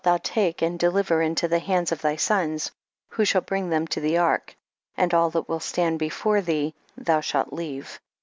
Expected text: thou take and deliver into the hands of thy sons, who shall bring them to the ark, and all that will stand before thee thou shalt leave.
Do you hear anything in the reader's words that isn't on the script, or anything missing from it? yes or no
no